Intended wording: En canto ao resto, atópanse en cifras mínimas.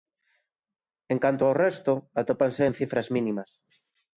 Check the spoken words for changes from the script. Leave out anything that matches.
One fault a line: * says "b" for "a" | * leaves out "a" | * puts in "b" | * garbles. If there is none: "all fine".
all fine